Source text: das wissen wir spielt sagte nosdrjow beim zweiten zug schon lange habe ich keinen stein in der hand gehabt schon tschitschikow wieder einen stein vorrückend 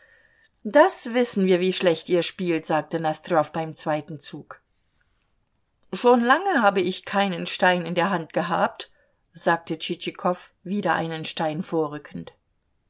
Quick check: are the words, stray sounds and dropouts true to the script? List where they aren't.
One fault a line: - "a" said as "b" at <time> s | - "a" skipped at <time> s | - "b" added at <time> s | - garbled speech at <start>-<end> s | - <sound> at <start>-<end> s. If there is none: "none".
- "wie schlecht ihr" added at 1.6 s
- "schon" said as "sagte" at 9.3 s